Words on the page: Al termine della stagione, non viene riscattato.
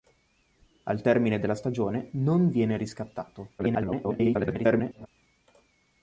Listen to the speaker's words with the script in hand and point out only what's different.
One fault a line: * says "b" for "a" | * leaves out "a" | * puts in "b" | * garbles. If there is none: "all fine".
* garbles